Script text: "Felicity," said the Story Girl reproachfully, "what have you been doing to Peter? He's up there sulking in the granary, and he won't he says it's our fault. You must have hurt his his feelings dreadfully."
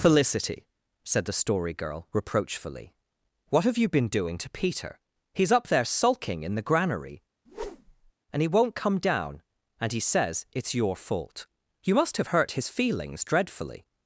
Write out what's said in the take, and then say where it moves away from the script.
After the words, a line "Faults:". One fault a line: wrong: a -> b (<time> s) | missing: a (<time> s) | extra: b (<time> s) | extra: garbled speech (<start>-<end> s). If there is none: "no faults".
"Felicity," said the Story Girl reproachfully, "what have you been doing to Peter? He's up there sulking in the granary, and he won't come down, and he says it's your fault. You must have hurt his feelings dreadfully."
Faults:
extra: come down and (8.8 s)
wrong: our -> your (10.7 s)
missing: his (12.7 s)